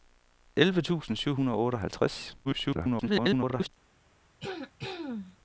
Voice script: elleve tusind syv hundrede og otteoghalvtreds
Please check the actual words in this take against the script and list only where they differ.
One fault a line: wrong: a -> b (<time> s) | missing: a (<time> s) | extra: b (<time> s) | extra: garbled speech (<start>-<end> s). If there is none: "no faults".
extra: garbled speech (2.4-3.7 s)